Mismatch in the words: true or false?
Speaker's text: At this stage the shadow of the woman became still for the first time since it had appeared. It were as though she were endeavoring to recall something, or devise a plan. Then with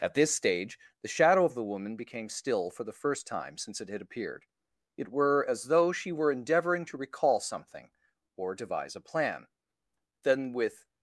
false